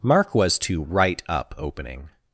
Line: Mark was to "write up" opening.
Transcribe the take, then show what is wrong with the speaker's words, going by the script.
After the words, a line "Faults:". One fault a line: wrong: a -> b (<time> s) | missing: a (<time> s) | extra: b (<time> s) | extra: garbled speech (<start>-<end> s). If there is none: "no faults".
Mark was to "write up" opening.
Faults:
no faults